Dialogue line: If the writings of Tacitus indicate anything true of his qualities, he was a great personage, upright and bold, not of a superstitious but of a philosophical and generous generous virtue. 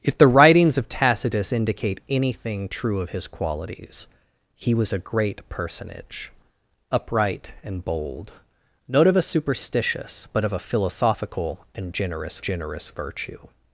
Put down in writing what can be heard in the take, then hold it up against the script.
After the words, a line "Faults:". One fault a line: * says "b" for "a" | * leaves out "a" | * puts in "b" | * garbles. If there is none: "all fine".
If the writings of Tacitus indicate anything true of his qualities, he was a great personage, upright and bold, not of a superstitious but of a philosophical and generous generous virtue.
Faults:
all fine